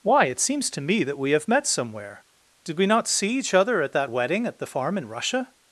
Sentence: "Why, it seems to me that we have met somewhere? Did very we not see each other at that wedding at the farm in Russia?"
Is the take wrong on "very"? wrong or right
wrong